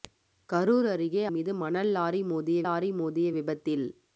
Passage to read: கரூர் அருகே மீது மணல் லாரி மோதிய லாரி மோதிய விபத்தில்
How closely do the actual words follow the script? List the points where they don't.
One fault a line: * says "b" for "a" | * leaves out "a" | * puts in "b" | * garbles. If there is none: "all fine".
all fine